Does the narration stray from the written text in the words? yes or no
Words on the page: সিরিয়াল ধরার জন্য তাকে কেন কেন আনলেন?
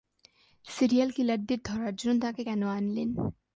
yes